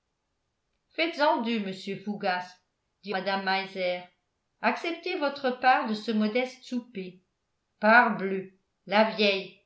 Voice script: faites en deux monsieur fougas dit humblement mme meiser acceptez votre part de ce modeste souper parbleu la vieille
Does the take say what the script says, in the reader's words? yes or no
no